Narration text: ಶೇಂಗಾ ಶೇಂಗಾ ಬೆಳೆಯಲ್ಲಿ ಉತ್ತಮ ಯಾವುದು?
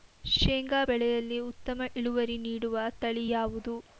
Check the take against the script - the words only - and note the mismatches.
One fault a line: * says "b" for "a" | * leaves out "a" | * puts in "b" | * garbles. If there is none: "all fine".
* leaves out "ಶೇಂಗಾ"
* puts in "ಇಳುವರಿ ನೀಡುವ ತಳಿ"